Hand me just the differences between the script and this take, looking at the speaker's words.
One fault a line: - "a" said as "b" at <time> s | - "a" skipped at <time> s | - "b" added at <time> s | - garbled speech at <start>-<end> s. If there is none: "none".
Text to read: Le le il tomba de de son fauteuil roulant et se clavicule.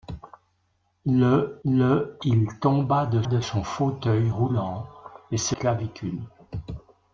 none